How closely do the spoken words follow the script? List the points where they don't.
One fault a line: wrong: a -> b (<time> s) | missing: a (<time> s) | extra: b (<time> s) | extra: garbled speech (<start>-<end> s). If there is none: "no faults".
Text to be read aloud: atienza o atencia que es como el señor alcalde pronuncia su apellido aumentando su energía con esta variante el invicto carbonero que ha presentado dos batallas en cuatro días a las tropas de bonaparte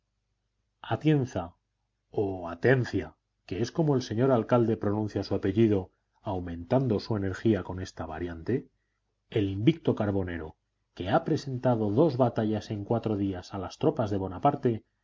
no faults